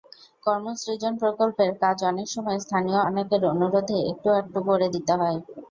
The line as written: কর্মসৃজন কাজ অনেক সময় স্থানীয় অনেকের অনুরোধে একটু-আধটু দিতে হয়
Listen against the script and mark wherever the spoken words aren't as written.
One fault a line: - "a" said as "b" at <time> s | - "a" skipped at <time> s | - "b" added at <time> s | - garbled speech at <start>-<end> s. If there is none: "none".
- "প্রকল্পের" added at 1.2 s
- "করে" added at 4.7 s